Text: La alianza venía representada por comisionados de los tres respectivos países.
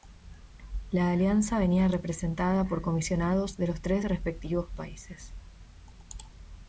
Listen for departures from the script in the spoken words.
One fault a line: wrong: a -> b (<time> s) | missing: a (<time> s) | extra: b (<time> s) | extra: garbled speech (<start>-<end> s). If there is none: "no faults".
no faults